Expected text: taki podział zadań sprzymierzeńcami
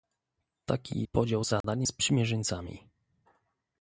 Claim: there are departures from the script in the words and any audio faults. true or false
true